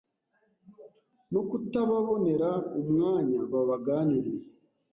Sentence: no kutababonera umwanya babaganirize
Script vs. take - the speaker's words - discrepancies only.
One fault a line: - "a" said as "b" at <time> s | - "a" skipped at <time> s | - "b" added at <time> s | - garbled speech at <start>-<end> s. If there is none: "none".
none